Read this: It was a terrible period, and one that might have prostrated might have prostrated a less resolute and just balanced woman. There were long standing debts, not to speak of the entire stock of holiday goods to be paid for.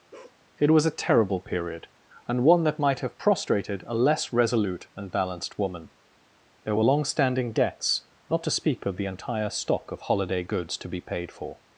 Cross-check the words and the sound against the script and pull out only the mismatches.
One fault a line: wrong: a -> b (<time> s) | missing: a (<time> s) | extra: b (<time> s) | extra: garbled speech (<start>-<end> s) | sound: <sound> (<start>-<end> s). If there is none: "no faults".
sound: bark (0.1-0.4 s)
missing: might have prostrated (3.8 s)
missing: just (5.1 s)